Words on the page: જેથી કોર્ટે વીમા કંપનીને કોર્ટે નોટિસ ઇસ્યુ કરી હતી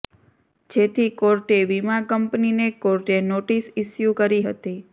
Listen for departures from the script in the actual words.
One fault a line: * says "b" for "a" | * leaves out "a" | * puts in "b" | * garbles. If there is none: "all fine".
all fine